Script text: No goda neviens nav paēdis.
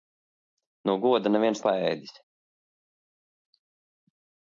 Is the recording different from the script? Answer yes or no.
yes